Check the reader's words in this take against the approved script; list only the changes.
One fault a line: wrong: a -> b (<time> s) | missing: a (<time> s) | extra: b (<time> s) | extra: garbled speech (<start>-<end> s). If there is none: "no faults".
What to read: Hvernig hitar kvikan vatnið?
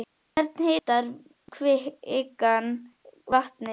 no faults